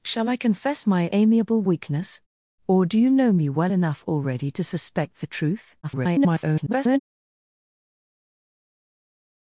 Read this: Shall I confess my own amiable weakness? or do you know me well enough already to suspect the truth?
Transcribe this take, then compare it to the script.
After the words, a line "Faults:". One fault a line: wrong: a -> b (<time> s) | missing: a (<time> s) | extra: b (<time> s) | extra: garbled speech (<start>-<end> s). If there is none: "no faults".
Shall I confess my amiable weakness? or do you know me well enough already to suspect the truth? [garbled]
Faults:
missing: own (1.1 s)
extra: garbled speech (5.8-7.0 s)